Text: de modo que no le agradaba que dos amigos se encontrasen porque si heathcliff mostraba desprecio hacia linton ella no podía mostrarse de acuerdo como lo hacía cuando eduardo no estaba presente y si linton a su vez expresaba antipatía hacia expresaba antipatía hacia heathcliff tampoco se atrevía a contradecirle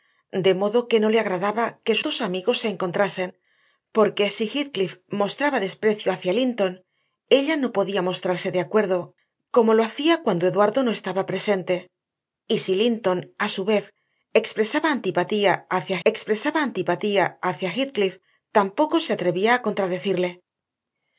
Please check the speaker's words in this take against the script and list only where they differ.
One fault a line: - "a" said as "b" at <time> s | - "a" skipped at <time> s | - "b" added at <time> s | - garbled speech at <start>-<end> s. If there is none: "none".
none